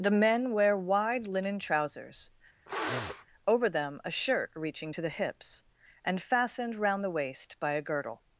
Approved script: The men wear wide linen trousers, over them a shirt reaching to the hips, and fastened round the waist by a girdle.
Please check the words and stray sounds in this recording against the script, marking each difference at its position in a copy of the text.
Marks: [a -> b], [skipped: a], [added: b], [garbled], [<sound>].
The men wear wide linen trousers, [sniff] over them a shirt reaching to the hips, and fastened round the waist by a girdle.